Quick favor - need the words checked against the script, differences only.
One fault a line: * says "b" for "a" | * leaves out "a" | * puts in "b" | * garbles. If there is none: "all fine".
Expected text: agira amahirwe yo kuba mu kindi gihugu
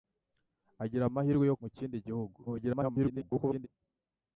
* leaves out "kuba"
* garbles